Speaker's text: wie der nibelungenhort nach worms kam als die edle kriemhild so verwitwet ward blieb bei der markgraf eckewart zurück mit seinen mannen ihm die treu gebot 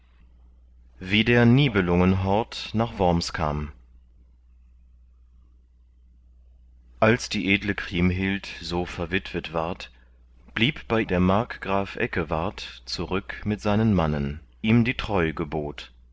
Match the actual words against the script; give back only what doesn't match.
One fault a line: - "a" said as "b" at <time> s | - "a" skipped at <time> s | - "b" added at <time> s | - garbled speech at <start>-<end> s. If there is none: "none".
none